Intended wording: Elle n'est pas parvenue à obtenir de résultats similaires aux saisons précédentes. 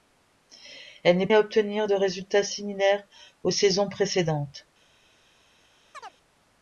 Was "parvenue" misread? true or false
true